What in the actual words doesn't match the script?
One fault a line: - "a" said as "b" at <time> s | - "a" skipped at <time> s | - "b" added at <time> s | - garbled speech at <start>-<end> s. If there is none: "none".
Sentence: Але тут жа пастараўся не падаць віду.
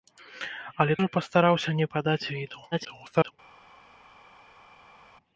- "тут" skipped at 0.9 s
- garbled speech at 2.7-3.3 s